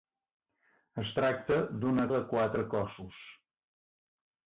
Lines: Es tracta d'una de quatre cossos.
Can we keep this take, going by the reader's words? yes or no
yes